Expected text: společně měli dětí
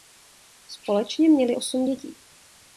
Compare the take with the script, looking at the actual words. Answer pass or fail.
fail